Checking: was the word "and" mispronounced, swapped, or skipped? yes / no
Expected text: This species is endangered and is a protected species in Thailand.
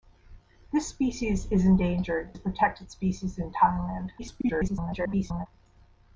yes